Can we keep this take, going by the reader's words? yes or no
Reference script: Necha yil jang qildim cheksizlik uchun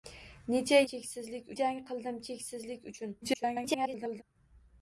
no